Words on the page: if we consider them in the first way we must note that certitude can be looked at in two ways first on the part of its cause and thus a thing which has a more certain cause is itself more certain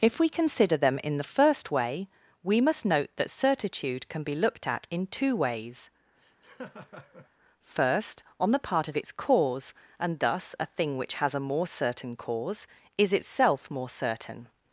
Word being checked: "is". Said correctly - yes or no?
yes